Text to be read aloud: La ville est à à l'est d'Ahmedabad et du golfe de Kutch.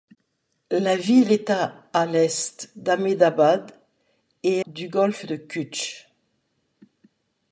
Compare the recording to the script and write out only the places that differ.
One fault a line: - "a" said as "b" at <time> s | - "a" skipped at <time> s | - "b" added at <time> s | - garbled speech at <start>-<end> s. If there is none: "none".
none